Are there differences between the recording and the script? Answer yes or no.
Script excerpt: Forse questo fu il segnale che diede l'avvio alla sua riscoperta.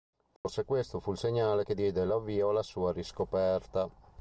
no